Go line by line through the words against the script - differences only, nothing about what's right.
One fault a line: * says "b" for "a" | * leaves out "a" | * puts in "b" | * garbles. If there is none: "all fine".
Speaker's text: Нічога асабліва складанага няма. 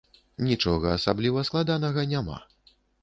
all fine